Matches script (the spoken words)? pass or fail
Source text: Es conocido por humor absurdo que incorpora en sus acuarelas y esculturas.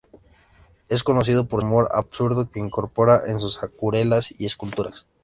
pass